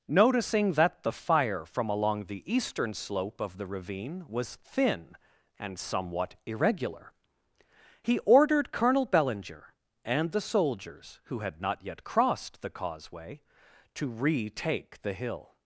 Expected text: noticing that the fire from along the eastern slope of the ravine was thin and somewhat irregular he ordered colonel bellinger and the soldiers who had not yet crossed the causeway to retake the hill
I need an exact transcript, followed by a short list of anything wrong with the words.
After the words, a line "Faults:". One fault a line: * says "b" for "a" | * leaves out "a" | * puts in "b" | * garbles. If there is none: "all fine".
noticing that the fire from along the eastern slope of the ravine was thin and somewhat irregular he ordered colonel bellinger and the soldiers who had not yet crossed the causeway to retake the hill
Faults:
all fine